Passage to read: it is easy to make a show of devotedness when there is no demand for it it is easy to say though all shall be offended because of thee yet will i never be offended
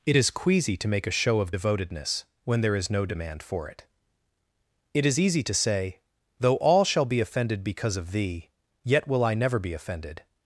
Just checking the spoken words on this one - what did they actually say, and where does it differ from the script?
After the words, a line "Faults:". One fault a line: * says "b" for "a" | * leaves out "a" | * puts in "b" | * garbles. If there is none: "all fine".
it is queasy to make a show of devotedness when there is no demand for it it is easy to say though all shall be offended because of thee yet will i never be offended
Faults:
* says "queasy" for "easy"